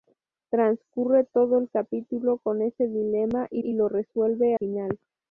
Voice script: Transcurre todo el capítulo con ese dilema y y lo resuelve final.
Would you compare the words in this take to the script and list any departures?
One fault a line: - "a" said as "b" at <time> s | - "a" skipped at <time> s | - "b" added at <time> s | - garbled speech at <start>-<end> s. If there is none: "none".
none